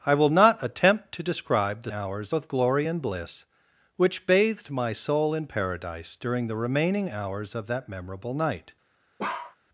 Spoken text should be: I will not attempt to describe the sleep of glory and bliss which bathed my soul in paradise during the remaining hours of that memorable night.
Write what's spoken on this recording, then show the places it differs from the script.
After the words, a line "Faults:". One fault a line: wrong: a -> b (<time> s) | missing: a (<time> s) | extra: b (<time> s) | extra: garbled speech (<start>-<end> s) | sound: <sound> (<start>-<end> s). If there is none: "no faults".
I will not attempt to describe the hours of glory and bliss which bathed my soul in paradise during the remaining hours of that memorable night.
Faults:
wrong: sleep -> hours (1.9 s)
sound: bark (9.2-9.6 s)